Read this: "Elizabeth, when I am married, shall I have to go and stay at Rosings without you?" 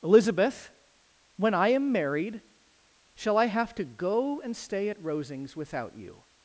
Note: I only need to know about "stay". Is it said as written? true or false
true